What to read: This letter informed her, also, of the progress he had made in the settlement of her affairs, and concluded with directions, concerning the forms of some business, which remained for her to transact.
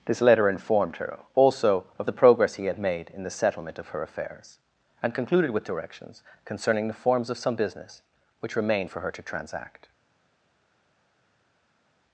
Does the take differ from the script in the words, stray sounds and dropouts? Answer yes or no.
no